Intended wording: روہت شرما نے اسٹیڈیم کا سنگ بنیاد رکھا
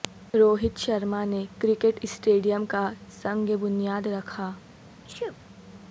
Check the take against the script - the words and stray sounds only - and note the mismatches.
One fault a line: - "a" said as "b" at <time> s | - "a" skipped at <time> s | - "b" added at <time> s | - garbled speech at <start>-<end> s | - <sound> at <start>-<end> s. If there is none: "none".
- "کرکٹ" added at 1.6 s
- sneeze at 5.0-5.4 s